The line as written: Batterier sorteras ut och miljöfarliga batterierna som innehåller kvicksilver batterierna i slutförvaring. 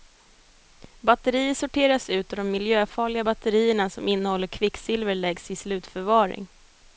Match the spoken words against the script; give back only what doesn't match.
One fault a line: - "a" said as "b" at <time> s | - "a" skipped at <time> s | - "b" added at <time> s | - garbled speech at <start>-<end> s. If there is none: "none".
- "de" added at 2.4 s
- "batterierna" said as "läggs" at 5.1 s